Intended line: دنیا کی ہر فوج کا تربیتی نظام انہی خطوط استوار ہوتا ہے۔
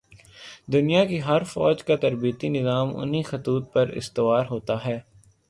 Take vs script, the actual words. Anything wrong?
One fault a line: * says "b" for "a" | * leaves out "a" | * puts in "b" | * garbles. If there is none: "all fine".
* puts in "پر"